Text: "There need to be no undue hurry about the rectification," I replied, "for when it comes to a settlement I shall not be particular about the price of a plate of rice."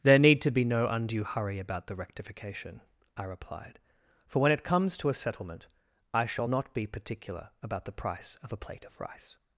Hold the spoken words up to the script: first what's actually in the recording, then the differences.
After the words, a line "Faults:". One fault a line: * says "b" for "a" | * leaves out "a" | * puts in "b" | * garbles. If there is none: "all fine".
"There need to be no undue hurry about the rectification," I replied, "for when it comes to a settlement I shall not be particular about the price of a plate of rice."
Faults:
all fine